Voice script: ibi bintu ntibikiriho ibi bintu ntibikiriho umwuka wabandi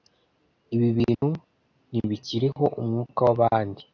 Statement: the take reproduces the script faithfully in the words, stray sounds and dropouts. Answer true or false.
false